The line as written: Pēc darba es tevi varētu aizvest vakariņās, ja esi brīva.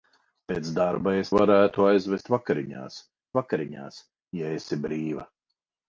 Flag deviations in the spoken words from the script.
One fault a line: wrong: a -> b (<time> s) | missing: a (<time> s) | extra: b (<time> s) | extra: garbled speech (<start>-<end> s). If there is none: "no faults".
missing: tevi (1.3 s)
extra: vakariņās (3.4 s)